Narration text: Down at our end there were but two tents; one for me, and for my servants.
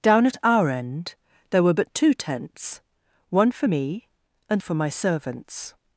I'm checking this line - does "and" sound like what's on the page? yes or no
yes